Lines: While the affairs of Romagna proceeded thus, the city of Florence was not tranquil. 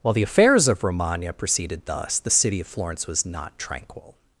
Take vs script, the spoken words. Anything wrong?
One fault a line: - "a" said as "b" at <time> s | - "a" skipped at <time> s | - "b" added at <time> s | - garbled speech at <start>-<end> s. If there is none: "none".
none